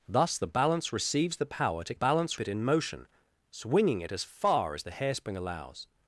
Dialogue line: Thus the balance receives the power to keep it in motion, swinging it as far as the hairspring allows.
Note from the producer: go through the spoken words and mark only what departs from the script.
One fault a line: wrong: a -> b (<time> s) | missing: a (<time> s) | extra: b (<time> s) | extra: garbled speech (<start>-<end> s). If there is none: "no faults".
wrong: keep -> balance (1.9 s)